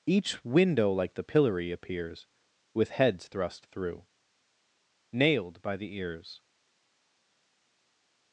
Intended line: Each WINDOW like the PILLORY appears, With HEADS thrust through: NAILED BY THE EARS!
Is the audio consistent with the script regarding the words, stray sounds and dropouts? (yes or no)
yes